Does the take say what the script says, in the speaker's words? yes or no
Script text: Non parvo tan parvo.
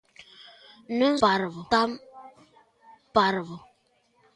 yes